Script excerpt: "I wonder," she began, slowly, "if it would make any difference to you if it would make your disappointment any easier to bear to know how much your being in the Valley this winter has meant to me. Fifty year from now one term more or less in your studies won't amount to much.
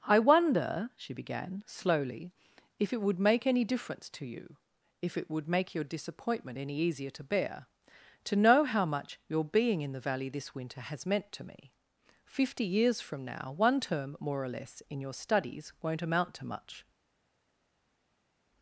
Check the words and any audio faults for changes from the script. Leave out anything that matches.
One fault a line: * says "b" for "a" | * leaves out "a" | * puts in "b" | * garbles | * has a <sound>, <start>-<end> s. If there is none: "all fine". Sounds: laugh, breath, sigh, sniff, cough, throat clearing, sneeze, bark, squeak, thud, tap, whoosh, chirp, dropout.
* says "years" for "year"